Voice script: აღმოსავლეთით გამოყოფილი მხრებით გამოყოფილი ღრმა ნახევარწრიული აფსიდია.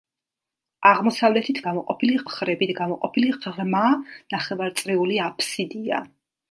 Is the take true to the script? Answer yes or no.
yes